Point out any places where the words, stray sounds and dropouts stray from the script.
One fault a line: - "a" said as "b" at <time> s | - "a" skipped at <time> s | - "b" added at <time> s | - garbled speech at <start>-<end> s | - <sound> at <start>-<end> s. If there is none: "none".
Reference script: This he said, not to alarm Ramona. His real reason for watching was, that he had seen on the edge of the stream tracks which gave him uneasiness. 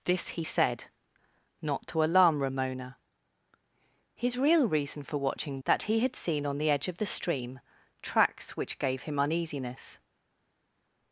- "was" skipped at 5.6 s